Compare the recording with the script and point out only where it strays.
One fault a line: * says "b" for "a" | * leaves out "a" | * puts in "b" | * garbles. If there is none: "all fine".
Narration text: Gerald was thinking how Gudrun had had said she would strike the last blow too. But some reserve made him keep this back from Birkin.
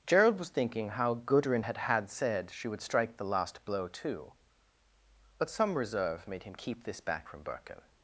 all fine